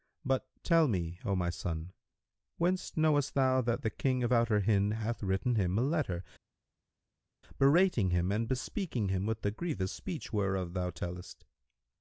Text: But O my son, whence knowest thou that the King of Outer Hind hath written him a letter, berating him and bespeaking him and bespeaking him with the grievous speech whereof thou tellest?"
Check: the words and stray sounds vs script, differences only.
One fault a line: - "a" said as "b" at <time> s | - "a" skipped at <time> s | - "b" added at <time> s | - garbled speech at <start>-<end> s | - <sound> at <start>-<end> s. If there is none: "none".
- "tell me" added at 0.6 s
- "and bespeaking him" skipped at 9.3 s